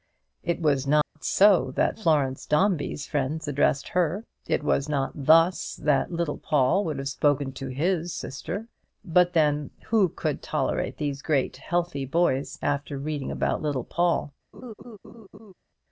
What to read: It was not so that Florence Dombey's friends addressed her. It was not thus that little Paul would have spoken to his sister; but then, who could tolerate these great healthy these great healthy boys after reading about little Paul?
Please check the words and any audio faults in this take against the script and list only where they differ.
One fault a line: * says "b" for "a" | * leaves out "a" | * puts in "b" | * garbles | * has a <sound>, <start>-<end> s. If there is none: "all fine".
* has a dropout, 1.0-1.2 s
* leaves out "these great healthy"
* has a laugh, 14.5-15.5 s